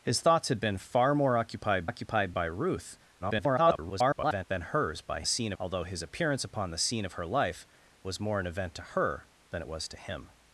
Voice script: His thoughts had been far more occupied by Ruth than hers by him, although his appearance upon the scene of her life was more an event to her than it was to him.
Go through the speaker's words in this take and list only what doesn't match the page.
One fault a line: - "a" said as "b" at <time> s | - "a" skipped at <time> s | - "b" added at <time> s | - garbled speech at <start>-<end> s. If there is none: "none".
- "occupied" added at 1.9 s
- garbled speech at 3.2-4.5 s
- "him" said as "scene" at 5.2 s